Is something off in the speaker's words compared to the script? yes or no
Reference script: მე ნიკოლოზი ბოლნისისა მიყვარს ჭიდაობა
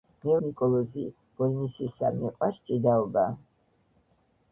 no